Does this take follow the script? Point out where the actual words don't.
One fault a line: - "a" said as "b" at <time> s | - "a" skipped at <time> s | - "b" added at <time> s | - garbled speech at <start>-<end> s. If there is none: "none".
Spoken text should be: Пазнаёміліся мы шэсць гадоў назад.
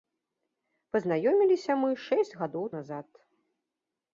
none